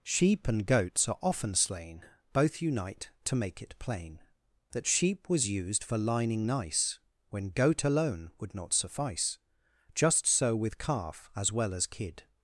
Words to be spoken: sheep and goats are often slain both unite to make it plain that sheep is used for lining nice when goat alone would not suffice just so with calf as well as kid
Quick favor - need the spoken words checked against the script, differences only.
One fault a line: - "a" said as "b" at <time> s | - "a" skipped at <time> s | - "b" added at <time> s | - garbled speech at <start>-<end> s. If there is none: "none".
- "is" said as "was" at 5.3 s